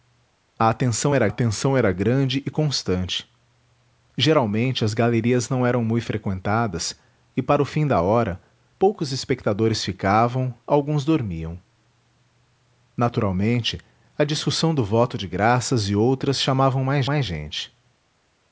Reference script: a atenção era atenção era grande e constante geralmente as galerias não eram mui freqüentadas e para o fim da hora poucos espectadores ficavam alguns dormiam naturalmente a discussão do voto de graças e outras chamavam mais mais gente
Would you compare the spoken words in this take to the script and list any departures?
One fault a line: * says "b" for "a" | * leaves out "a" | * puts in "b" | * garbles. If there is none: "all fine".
all fine